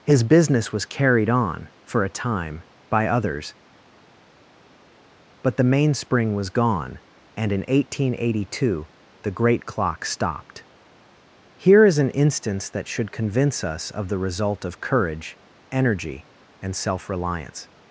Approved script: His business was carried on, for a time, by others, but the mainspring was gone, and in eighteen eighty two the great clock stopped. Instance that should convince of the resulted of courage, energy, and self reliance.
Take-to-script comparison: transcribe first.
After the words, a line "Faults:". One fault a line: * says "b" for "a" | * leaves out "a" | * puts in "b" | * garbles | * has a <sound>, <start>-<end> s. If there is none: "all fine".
His business was carried on, for a time, by others, but the mainspring was gone, and in eighteen eighty two the great clock stopped. Here is an instance that should convince us of the result of courage, energy, and self reliance.
Faults:
* puts in "Here is an"
* puts in "us"
* says "result" for "resulted"